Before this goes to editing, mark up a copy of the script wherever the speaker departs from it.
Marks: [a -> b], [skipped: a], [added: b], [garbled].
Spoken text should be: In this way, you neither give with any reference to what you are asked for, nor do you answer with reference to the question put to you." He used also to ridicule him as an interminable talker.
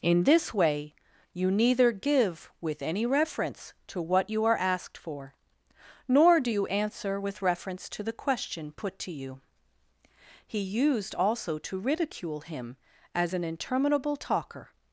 In this way, you neither give with any reference to what you are asked for, nor do you answer with reference to the question put to you." He used also to ridicule him as an interminable talker.